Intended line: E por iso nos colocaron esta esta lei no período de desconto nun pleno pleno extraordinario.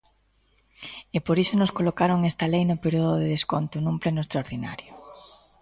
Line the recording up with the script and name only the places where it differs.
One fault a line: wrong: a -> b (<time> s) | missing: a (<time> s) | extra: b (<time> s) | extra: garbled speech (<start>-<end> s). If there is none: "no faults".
missing: esta (2.5 s)
missing: pleno (4.2 s)